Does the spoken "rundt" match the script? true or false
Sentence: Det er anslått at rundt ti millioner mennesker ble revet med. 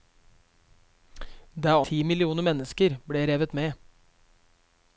false